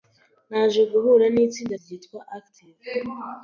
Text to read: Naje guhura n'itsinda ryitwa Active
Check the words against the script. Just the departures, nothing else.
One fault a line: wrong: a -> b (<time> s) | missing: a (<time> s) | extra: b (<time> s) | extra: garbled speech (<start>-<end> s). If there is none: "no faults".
no faults